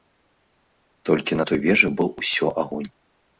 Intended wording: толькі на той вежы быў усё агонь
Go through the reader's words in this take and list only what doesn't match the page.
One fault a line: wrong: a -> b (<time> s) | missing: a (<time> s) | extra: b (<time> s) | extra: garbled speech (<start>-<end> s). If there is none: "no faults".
no faults